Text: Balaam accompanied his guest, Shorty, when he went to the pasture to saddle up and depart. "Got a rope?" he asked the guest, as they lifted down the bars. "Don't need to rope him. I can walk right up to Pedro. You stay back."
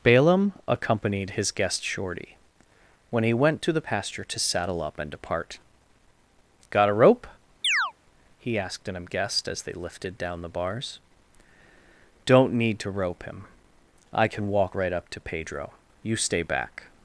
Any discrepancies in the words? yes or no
yes